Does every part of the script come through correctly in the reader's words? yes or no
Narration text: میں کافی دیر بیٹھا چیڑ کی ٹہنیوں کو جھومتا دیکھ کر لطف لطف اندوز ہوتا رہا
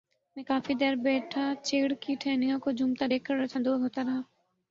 no